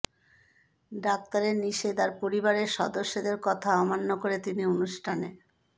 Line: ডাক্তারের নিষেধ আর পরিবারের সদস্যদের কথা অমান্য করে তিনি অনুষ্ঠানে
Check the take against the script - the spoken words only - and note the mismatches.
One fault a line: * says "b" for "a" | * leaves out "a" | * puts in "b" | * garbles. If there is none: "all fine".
all fine